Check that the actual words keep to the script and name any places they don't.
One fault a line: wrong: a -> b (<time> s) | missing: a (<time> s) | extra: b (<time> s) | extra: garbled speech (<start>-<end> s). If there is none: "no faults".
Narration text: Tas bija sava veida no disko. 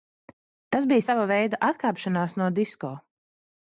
extra: atkāpšanās (1.7 s)